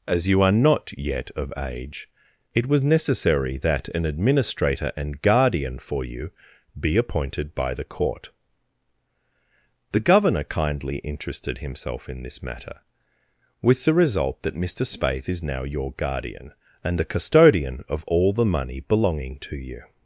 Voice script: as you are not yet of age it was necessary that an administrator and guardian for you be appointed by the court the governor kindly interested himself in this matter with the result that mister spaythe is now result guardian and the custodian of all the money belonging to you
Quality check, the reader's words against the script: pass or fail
fail